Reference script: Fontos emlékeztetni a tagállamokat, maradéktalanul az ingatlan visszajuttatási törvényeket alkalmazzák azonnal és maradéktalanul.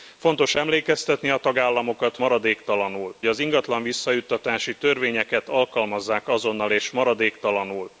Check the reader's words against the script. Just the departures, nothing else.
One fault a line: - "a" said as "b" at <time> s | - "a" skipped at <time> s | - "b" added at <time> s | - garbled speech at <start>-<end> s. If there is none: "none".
none